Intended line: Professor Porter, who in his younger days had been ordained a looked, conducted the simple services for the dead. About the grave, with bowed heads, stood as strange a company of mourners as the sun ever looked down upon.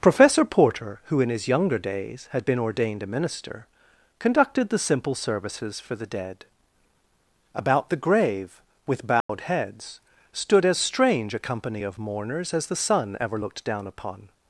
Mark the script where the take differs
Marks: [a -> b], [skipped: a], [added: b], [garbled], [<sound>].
Professor Porter, who in his younger days had been ordained a [looked, -> minister] conducted the simple services for the dead. About the grave, with bowed [dropout] heads, stood as strange a company of mourners as the sun ever looked down upon.